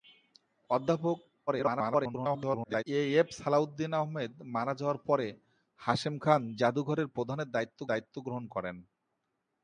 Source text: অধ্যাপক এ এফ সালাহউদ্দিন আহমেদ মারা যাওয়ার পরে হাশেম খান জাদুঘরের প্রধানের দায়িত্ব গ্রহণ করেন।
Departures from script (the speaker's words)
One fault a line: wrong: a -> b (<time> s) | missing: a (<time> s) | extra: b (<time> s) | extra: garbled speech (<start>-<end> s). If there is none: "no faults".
extra: garbled speech (1.5-2.8 s)
extra: দায়িত্ব (7.9 s)